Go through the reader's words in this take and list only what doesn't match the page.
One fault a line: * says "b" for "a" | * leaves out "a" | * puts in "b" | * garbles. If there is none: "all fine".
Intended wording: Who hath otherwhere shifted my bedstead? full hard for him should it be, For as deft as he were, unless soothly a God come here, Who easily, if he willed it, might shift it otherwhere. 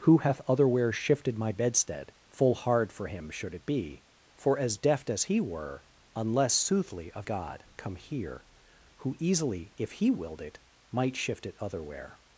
all fine